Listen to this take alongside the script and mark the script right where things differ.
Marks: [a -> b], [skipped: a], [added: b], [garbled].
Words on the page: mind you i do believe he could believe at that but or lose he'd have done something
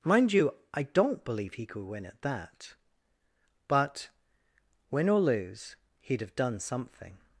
mind you i [do -> don't] believe he could [believe -> win] at that but [added: win] or lose he'd have done something